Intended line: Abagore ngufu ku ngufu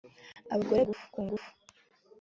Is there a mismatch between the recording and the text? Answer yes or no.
no